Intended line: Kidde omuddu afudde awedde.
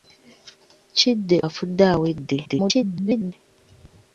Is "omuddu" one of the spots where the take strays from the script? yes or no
yes